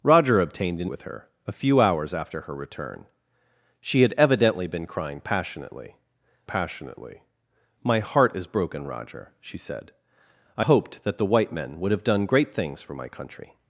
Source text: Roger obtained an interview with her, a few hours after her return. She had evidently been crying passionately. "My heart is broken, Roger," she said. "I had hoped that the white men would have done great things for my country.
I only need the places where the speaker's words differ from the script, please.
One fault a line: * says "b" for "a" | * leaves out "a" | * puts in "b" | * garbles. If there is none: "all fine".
* leaves out "interview"
* puts in "passionately"
* leaves out "had"